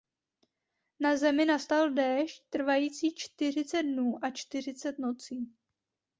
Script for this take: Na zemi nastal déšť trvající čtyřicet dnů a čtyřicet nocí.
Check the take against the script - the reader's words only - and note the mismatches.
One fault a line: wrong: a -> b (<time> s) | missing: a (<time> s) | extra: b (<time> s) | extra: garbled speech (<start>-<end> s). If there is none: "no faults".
no faults